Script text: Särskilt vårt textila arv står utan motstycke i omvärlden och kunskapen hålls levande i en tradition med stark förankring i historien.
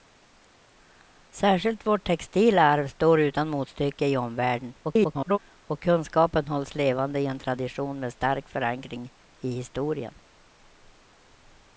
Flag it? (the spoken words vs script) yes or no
yes